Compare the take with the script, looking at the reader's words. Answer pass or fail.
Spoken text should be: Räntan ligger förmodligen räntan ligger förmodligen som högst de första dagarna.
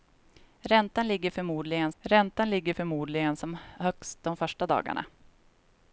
pass